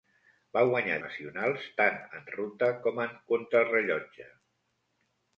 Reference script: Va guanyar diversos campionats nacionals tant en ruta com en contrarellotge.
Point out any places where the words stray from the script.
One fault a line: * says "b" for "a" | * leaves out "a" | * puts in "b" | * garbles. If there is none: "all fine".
* leaves out "diversos campionats"